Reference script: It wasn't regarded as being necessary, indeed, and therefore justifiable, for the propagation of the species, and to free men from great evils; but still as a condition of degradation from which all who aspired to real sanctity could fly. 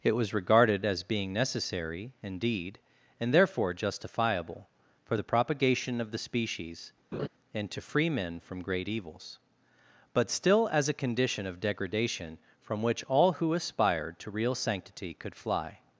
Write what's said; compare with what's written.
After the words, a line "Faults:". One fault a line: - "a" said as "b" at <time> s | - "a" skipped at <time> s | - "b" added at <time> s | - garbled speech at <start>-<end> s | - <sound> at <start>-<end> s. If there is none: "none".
It was regarded as being necessary, indeed, and therefore justifiable, for the propagation of the species, and to free men from great evils; but still as a condition of degradation from which all who aspired to real sanctity could fly.
Faults:
- "wasn't" said as "was" at 0.1 s
- laugh at 7.1-7.3 s